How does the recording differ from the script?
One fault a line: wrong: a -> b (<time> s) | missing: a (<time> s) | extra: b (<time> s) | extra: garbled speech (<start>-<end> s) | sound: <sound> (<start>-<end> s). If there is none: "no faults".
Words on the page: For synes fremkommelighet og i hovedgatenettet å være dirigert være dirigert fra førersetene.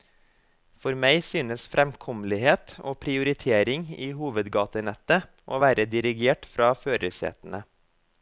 extra: meg (1.0 s)
extra: prioritering (3.0 s)
missing: være dirigert (6.5 s)